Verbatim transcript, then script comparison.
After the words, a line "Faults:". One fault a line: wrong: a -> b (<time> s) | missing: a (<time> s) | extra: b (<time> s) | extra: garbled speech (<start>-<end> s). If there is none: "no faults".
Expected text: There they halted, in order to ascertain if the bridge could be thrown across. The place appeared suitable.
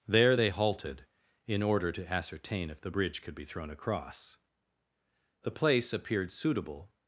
There they halted, in order to ascertain if the bridge could be thrown across. The place appeared suitable.
Faults:
no faults